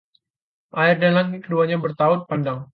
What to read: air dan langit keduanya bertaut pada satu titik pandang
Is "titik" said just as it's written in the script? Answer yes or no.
no